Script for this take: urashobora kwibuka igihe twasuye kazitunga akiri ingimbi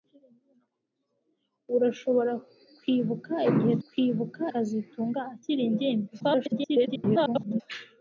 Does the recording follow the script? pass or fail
fail